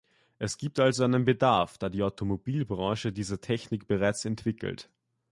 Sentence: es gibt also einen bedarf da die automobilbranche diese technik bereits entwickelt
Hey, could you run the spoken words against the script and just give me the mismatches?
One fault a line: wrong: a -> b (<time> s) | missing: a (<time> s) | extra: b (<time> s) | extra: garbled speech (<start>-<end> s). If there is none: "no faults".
no faults